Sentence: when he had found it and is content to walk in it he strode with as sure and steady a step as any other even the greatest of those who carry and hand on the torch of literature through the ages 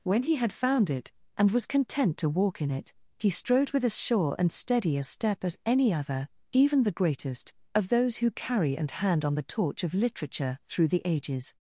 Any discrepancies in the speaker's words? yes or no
yes